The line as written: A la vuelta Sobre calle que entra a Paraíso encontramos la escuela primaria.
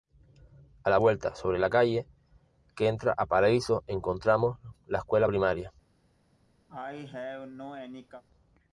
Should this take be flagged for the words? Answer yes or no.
yes